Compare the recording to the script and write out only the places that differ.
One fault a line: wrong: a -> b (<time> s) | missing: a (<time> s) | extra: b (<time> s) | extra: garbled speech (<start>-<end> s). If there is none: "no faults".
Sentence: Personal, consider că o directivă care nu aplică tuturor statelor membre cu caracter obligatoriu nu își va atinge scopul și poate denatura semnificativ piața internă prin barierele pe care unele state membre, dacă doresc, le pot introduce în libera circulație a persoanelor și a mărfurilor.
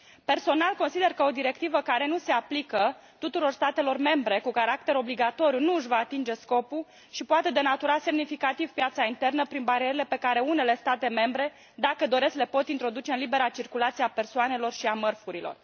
extra: se (2.2 s)